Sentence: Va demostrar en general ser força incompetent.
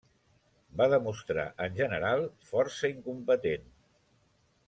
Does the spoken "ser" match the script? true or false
false